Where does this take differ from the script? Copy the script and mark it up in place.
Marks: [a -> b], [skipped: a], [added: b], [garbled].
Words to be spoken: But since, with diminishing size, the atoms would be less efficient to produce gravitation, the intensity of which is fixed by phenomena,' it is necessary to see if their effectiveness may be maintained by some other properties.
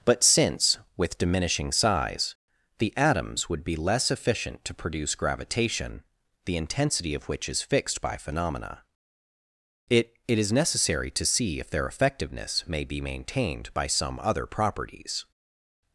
But since, with diminishing size, the atoms would be less efficient to produce gravitation, the intensity of which is fixed by phenomena,' it [added: it] is necessary to see if their effectiveness may be maintained by some other properties.